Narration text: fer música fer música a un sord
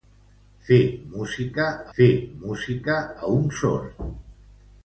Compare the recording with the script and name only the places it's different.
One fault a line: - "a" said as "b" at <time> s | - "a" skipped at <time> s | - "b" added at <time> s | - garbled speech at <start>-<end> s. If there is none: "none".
none